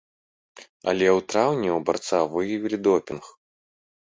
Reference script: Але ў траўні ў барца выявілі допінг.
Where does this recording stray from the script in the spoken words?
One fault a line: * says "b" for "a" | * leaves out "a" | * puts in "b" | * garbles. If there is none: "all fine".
all fine